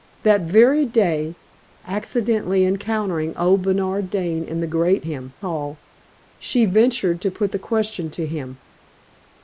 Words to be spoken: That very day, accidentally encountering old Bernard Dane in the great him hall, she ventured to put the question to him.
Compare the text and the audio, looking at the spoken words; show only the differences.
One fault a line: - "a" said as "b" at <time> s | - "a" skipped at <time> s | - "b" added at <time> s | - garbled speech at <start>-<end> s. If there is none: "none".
none